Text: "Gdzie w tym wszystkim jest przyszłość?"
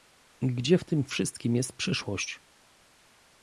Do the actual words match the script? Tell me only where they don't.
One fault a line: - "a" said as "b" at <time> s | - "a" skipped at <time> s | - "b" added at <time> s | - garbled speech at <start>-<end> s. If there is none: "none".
none